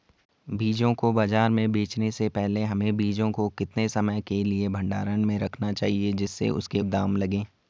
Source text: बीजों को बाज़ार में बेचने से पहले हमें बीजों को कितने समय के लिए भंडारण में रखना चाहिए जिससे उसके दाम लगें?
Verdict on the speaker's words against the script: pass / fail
pass